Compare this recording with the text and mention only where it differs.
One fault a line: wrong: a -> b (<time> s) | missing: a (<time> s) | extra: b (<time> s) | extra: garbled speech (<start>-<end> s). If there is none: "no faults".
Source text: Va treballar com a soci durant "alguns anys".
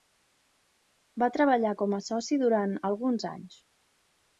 no faults